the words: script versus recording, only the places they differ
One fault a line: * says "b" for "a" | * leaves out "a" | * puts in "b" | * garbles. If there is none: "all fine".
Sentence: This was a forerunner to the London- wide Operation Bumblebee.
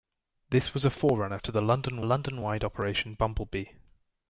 * puts in "London"